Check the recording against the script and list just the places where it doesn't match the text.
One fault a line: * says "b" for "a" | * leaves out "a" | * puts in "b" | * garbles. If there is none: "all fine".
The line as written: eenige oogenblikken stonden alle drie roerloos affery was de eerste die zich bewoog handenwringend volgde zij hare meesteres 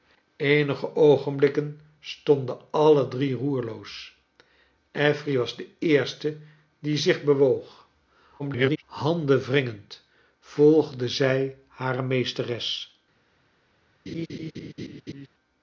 * garbles